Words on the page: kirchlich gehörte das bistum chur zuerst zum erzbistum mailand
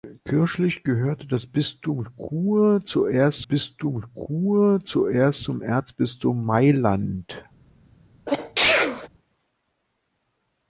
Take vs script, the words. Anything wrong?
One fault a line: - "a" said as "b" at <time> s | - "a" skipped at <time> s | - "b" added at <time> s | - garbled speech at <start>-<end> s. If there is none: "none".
- "bistum chur zuerst" added at 3.4 s